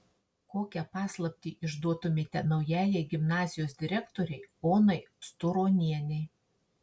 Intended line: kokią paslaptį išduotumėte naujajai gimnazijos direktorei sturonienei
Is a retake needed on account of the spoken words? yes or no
yes